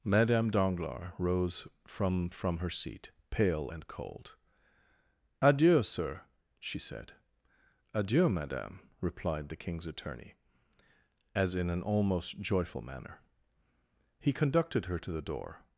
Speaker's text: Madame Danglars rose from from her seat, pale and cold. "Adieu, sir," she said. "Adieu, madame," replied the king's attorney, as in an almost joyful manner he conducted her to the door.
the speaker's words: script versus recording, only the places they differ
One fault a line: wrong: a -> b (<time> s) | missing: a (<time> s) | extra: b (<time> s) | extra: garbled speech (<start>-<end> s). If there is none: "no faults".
no faults